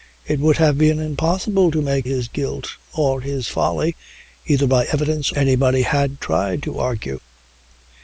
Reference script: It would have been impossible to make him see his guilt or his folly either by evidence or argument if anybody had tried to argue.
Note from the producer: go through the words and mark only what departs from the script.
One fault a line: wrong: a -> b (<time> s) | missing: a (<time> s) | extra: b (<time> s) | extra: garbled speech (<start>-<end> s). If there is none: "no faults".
missing: him see (2.1 s)
missing: or argument if (5.3 s)